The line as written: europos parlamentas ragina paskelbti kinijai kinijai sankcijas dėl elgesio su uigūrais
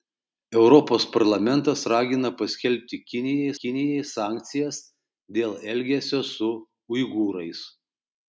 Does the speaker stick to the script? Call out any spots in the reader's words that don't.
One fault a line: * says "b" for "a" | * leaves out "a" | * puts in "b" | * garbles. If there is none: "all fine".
all fine